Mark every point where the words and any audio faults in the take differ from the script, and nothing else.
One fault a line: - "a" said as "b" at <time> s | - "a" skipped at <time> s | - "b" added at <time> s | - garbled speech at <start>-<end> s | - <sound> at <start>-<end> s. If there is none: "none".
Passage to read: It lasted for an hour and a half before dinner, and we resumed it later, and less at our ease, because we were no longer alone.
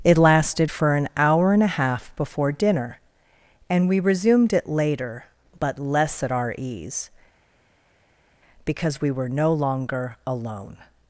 - "and" said as "but" at 5.6 s